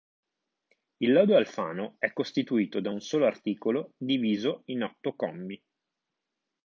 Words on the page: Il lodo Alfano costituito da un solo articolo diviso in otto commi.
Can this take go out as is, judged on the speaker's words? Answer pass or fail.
fail